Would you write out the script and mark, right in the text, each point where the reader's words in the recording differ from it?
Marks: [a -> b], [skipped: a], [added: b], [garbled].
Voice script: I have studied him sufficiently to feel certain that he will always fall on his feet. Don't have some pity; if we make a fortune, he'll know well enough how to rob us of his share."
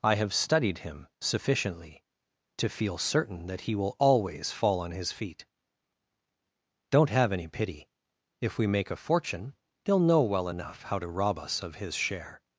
I have studied him sufficiently to feel certain that he will always fall on his feet. Don't have [some -> any] pity; if we make a fortune, he'll know well enough how to rob us of his share."